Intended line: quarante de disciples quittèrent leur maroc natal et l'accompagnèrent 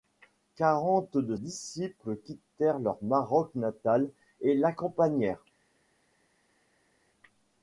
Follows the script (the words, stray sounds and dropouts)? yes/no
yes